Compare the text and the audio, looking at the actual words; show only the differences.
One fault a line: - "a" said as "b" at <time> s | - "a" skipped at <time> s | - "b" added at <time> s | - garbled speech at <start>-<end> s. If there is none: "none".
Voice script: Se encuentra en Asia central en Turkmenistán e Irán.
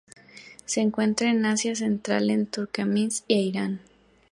none